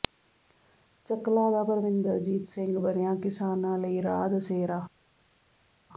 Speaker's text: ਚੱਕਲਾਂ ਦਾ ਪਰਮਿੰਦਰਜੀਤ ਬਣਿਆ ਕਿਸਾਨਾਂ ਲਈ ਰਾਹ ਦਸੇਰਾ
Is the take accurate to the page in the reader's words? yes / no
no